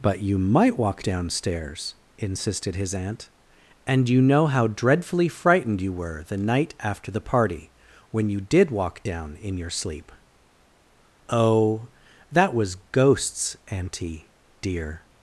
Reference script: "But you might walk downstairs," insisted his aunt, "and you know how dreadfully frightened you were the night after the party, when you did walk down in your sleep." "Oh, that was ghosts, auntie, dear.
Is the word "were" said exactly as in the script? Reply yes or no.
yes